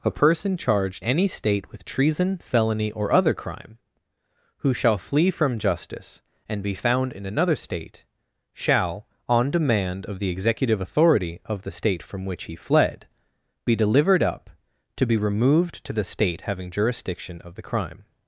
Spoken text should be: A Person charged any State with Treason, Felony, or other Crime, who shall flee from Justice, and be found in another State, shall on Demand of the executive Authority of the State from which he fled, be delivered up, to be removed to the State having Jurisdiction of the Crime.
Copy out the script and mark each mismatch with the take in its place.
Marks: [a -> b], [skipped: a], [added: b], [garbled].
A Person charged any State with Treason, Felony, or other Crime, who shall flee from Justice, and be found in another State, shall on Demand of the executive Authority of the State from which he fled, be delivered up, to be removed to the State having Jurisdiction of the Crime.